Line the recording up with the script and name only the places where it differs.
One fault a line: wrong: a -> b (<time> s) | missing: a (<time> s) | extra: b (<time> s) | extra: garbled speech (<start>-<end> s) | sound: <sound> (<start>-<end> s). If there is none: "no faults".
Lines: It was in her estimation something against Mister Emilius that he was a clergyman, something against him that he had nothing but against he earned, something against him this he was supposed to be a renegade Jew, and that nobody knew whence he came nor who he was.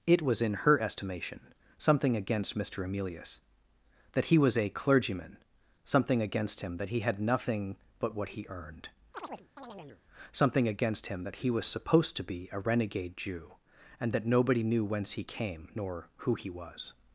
wrong: against -> what (8.2 s)
sound: chirp (9.1-10.0 s)
wrong: this -> that (11.2 s)